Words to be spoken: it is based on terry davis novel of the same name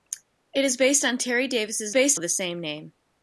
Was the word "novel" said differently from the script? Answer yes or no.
yes